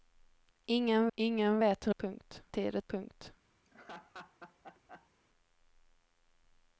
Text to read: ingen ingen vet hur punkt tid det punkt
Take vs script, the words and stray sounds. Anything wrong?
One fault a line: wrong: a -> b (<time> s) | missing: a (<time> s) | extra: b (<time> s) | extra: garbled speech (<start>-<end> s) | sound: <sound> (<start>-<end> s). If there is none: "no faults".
sound: laugh (3.6-5.1 s)